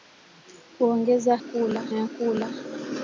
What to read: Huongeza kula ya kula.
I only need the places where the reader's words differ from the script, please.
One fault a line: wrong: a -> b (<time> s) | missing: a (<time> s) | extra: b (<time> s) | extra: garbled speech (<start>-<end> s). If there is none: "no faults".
no faults